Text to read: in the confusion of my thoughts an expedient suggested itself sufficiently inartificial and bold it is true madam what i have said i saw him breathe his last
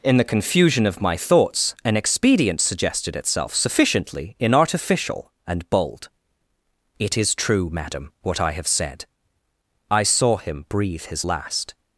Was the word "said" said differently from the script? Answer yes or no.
no